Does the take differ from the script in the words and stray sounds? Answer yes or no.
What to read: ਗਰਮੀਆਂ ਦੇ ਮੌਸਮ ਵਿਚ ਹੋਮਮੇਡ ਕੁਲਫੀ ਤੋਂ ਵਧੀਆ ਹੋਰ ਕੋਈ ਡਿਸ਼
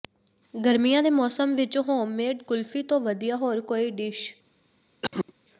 yes